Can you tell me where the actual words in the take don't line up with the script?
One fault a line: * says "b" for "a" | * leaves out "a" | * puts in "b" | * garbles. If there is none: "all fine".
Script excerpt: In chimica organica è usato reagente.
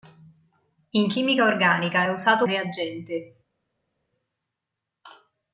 all fine